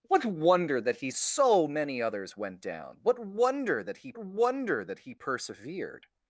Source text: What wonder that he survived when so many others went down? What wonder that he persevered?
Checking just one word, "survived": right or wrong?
wrong